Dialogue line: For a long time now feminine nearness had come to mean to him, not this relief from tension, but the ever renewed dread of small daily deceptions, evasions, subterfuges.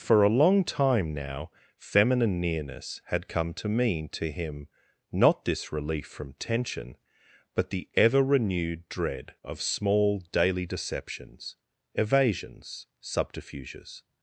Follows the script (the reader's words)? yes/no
yes